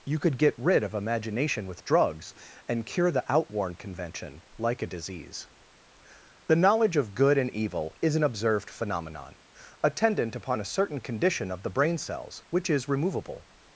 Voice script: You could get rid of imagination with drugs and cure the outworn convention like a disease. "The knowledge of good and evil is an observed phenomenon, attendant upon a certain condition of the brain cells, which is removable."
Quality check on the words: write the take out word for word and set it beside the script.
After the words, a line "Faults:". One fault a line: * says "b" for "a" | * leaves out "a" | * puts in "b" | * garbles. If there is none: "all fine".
You could get rid of imagination with drugs and cure the outworn convention like a disease. "The knowledge of good and evil is an observed phenomenon, attendant upon a certain condition of the brain cells, which is removable."
Faults:
all fine